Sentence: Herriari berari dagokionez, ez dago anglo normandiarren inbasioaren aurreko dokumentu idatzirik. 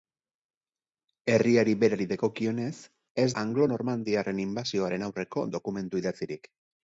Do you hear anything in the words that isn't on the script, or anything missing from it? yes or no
yes